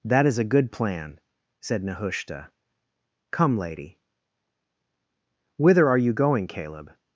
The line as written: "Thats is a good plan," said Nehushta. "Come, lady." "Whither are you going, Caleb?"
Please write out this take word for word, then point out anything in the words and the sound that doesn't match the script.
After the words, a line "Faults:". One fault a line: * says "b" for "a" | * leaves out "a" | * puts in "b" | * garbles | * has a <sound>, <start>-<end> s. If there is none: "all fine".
"That is a good plan," said Nehushta. "Come, lady." "Whither are you going, Caleb?"
Faults:
* says "That" for "Thats"